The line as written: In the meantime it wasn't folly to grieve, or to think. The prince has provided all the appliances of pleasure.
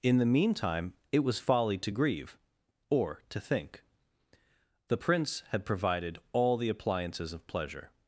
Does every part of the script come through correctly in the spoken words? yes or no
no